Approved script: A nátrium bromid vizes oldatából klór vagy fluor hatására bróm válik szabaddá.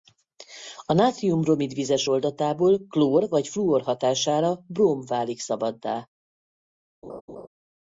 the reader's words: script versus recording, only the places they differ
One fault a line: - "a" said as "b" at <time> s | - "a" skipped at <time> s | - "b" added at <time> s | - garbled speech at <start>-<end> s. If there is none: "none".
none